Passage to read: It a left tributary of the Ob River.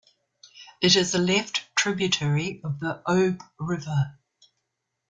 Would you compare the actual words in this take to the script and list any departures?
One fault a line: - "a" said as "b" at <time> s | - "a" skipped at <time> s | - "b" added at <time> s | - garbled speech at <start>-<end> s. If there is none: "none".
- "is" added at 0.9 s